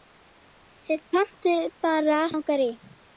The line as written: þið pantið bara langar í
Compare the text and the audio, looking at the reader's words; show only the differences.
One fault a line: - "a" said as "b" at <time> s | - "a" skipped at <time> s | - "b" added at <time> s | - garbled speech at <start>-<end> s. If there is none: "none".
none